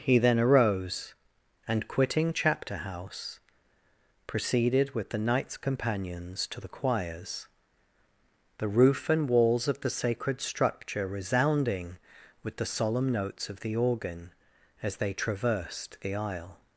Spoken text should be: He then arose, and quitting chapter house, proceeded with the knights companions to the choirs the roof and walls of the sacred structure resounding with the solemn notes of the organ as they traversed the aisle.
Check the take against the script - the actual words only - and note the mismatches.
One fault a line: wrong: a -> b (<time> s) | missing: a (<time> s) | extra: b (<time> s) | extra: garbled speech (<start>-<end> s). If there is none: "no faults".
no faults